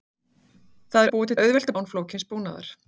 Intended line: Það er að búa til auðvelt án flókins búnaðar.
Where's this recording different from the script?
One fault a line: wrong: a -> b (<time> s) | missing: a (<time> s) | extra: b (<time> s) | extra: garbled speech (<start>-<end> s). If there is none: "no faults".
no faults